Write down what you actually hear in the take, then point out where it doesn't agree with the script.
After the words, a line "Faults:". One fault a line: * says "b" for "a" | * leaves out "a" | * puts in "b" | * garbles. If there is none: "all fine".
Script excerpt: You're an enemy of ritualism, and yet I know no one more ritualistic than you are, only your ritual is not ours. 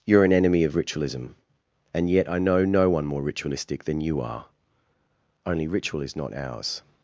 You're an enemy of ritualism, and yet I know no one more ritualistic than you are, only ritual is not ours.
Faults:
* leaves out "your"